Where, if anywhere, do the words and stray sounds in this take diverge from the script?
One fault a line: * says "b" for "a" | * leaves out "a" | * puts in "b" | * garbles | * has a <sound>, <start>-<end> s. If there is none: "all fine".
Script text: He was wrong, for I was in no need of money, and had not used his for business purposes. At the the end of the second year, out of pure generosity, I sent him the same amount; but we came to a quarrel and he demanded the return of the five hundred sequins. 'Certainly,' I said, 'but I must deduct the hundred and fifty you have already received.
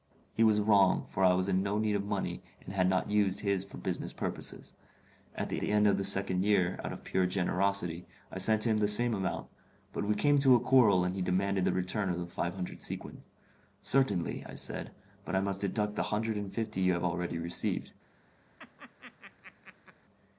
* has a laugh, 18.6-20.0 s